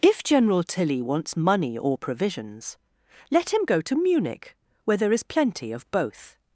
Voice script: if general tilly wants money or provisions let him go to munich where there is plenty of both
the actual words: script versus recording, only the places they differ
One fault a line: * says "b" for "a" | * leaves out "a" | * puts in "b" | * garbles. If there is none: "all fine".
all fine